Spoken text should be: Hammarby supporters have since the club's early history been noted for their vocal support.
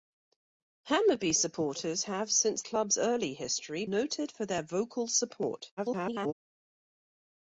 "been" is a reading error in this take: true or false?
true